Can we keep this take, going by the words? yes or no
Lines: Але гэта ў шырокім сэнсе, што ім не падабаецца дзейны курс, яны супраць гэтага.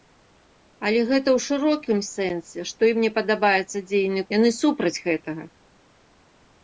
no